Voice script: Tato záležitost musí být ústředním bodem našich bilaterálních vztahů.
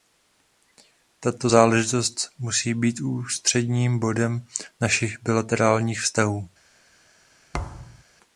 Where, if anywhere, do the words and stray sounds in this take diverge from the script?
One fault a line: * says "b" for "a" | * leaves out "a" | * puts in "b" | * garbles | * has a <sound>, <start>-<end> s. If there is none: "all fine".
* has a thud, 7.5-8.0 s